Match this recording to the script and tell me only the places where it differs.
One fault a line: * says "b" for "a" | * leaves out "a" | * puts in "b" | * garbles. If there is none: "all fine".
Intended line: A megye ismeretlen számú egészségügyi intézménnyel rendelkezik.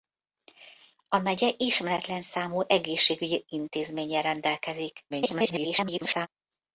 * garbles